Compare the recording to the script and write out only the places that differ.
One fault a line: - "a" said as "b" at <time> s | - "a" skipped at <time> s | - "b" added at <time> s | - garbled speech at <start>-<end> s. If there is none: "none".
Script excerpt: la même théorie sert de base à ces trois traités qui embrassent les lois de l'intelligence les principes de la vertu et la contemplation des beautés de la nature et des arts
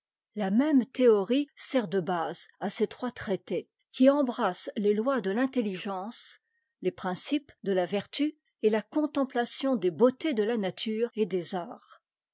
none